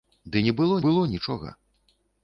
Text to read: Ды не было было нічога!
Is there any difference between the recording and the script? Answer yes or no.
no